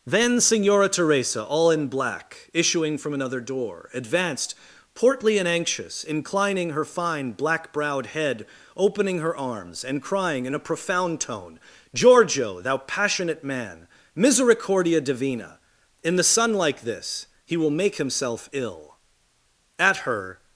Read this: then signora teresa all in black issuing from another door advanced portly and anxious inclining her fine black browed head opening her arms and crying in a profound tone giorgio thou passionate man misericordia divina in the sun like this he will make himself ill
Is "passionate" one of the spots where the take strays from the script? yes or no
no